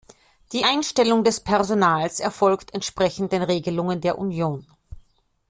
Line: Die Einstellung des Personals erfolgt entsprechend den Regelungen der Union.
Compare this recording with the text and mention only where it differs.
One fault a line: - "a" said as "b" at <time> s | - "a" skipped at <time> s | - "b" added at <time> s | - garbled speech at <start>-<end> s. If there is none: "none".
none